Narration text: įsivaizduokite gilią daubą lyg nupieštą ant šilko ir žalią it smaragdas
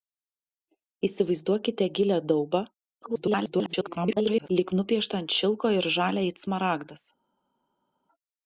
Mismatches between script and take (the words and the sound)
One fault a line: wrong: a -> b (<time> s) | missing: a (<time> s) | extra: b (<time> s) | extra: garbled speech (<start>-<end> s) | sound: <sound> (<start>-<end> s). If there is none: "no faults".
extra: garbled speech (3.0-4.5 s)